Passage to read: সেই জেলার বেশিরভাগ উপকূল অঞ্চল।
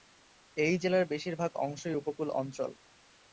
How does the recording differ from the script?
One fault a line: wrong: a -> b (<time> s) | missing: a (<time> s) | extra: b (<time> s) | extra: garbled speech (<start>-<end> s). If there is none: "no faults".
wrong: সেই -> এই (0.6 s)
extra: অংশই (1.6 s)